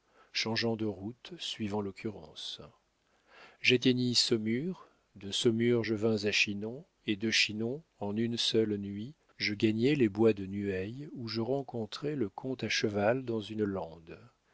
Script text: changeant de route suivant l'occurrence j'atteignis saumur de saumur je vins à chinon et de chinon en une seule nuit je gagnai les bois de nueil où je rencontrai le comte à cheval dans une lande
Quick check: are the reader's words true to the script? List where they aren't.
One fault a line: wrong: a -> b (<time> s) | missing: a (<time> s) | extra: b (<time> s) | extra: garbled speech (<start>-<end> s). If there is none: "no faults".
no faults